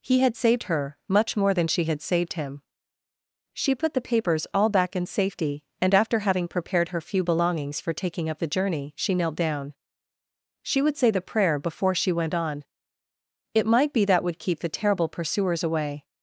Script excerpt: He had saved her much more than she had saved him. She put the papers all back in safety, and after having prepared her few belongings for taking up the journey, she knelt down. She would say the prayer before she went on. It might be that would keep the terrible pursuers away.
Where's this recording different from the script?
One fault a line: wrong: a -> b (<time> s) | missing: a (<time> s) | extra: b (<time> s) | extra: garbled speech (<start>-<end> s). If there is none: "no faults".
no faults